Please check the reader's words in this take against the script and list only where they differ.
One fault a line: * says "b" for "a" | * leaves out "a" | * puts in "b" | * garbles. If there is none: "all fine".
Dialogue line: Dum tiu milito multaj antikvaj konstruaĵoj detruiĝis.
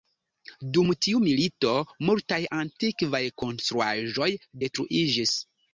all fine